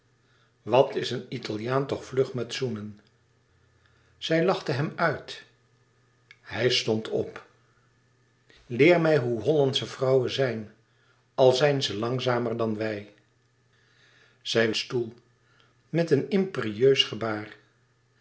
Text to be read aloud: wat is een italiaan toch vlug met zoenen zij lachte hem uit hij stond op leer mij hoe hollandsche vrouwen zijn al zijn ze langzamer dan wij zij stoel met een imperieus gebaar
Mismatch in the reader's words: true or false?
false